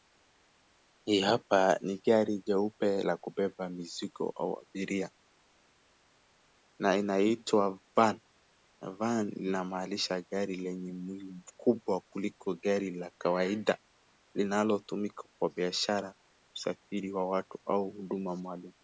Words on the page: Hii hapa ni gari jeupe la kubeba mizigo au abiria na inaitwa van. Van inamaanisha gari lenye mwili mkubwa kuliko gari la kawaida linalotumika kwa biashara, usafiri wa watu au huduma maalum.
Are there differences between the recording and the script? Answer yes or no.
no